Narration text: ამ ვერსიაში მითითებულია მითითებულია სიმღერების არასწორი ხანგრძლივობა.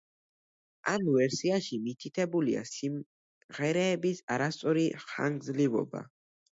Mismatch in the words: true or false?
true